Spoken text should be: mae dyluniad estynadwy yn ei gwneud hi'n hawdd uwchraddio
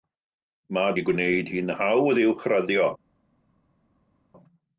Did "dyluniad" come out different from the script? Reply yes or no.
yes